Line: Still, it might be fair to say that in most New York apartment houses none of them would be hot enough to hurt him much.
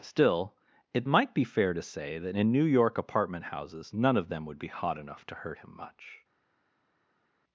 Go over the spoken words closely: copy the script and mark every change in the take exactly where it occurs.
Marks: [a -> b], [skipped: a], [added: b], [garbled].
Still, it might be fair to say that in [skipped: most] New York apartment houses none of them would be hot enough to hurt him much.